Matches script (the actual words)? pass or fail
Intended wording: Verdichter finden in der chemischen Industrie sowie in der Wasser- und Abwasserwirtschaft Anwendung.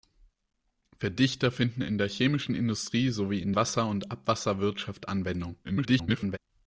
fail